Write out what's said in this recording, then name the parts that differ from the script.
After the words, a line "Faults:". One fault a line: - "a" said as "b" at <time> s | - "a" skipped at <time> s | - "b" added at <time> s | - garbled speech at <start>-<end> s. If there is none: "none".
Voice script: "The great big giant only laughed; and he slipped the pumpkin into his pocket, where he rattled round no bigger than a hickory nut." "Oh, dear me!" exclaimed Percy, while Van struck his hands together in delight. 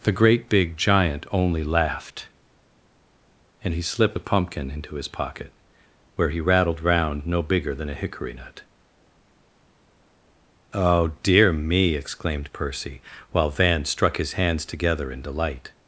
"The great big giant only laughed; and he slipped a pumpkin into his pocket, where he rattled round no bigger than a hickory nut." "Oh, dear me!" exclaimed Percy, while Van struck his hands together in delight.
Faults:
- "the" said as "a" at 4.1 s